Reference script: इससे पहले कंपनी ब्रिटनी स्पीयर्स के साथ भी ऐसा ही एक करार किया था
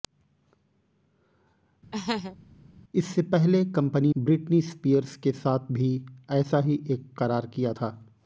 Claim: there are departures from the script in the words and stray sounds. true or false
true